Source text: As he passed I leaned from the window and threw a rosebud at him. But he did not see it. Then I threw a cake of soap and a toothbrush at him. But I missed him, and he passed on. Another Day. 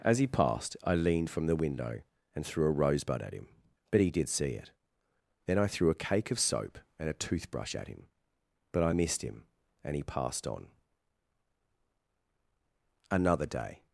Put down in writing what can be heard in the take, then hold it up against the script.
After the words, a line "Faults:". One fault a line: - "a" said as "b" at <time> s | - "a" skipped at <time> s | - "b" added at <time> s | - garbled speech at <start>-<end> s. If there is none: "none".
As he passed I leaned from the window and threw a rosebud at him. But he did see it. Then I threw a cake of soap and a toothbrush at him. But I missed him, and he passed on. Another Day.
Faults:
- "not" skipped at 4.3 s